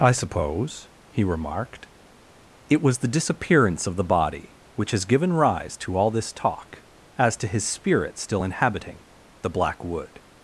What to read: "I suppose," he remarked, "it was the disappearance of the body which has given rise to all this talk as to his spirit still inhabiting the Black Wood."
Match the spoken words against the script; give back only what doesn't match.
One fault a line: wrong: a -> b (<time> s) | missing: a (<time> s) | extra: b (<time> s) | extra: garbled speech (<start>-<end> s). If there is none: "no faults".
no faults